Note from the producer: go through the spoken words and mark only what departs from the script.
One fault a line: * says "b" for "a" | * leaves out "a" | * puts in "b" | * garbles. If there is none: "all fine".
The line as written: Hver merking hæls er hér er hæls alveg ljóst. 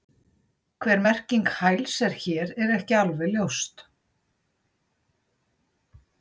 * says "ekki" for "hæls"